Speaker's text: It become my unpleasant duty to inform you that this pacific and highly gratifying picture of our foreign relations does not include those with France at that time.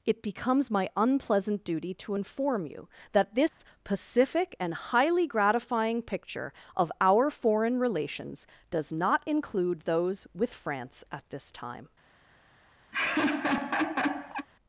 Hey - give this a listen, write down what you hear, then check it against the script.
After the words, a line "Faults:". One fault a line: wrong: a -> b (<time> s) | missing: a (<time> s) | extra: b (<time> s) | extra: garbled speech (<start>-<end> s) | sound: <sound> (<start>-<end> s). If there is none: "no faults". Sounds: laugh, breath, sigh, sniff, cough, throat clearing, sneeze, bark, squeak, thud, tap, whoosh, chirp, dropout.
It becomes my unpleasant duty to inform you that this pacific and highly gratifying picture of our foreign relations does not include those with France at this time.
Faults:
wrong: become -> becomes (0.2 s)
sound: dropout (3.5-3.6 s)
wrong: that -> this (11.3 s)
sound: laugh (12.9-14.5 s)